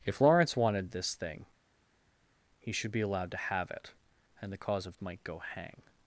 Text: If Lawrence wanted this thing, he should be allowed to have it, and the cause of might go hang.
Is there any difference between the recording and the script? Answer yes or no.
no